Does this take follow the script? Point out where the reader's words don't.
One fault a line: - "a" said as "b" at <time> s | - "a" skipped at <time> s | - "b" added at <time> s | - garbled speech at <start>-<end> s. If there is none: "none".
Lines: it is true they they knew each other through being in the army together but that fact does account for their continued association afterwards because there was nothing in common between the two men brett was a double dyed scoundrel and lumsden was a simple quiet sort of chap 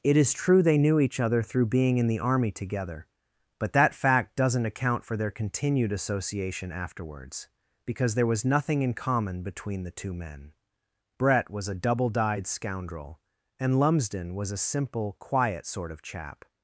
- "they" skipped at 0.8 s
- "does" said as "doesn't" at 4.3 s